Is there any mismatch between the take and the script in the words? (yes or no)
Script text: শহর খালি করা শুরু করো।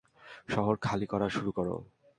no